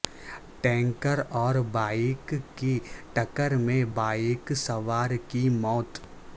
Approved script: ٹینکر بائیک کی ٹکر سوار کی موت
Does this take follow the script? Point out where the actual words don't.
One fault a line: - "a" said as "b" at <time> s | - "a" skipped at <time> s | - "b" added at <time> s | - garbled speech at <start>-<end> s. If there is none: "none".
- "اور" added at 1.3 s
- "میں بائیک" added at 3.6 s